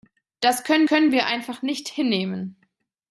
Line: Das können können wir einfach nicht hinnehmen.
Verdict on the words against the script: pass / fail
pass